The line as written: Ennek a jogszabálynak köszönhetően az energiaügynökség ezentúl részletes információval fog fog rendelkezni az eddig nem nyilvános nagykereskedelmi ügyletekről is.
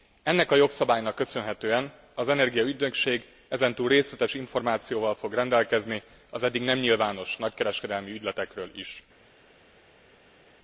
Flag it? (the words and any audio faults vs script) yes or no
yes